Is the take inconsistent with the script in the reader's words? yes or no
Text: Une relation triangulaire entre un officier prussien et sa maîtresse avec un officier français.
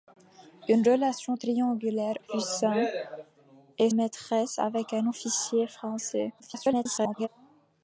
yes